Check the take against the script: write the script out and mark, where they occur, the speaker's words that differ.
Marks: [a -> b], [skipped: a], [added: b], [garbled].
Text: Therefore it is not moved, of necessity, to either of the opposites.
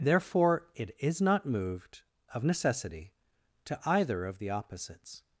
Therefore it is not moved, of necessity, to either of the opposites.